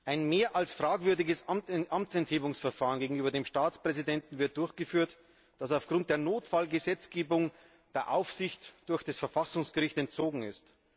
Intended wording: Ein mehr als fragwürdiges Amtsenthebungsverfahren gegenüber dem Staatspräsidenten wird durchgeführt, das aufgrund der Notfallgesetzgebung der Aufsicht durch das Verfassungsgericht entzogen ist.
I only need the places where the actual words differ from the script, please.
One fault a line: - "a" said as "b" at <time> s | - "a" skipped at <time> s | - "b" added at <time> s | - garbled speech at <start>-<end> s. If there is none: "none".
none